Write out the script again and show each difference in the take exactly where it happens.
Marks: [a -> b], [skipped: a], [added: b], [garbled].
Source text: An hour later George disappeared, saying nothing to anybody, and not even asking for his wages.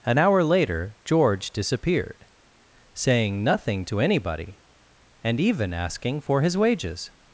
An hour later George disappeared, saying nothing to anybody, and [skipped: not] even asking for his wages.